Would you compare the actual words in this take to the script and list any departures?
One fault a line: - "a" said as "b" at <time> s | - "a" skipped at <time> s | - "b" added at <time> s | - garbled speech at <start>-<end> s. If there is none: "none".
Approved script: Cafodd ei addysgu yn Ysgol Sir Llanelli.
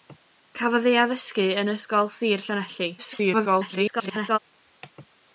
- garbled speech at 3.0-4.4 s